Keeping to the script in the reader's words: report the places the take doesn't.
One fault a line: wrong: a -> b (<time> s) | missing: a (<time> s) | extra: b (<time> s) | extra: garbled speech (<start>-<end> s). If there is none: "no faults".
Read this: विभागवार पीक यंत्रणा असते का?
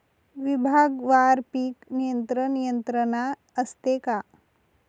extra: नियंत्रण (1.9 s)